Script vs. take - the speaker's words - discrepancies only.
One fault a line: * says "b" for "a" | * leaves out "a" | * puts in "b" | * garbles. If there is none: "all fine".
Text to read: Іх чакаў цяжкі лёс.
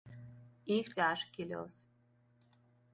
* leaves out "чакаў"